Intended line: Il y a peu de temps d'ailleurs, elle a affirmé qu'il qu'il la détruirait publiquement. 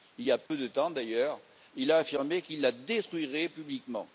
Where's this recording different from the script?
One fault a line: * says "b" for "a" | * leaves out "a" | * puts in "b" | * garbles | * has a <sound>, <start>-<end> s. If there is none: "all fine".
* has a dropout, 0.5-0.5 s
* says "il" for "elle"
* leaves out "qu'il"